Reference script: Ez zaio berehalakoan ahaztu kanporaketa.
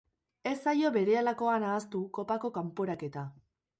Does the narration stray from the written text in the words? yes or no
yes